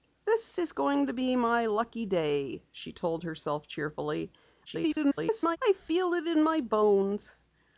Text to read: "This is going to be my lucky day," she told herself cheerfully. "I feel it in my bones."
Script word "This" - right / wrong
right